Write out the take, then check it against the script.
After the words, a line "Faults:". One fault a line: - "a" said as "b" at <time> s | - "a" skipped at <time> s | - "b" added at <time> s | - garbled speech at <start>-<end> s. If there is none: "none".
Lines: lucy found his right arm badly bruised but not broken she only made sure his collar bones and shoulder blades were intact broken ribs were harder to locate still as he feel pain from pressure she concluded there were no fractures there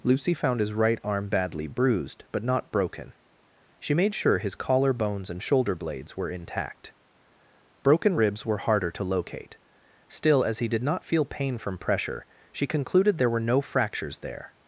lucy found his right arm badly bruised but not broken she made sure his collar bones and shoulder blades were intact broken ribs were harder to locate still as he did not feel pain from pressure she concluded there were no fractures there
Faults:
- "only" skipped at 3.9 s
- "did not" added at 10.7 s